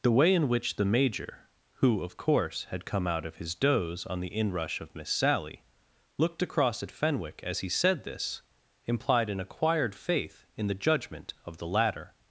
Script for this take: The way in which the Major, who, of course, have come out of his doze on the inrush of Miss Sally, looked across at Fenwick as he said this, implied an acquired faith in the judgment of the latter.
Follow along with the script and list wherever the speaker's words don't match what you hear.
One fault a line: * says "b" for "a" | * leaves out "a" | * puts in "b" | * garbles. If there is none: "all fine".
* says "had" for "have"